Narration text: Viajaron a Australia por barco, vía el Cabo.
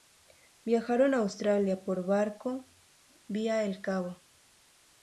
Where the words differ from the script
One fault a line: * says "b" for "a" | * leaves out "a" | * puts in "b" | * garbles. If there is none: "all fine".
all fine